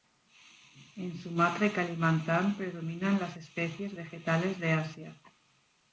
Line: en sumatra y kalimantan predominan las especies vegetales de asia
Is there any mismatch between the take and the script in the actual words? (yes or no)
no